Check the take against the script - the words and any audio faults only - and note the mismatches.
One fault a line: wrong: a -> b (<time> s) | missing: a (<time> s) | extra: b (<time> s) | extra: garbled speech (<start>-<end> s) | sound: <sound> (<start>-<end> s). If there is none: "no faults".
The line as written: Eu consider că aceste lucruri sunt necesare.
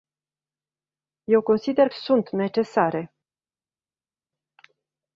missing: că aceste lucruri (1.9 s)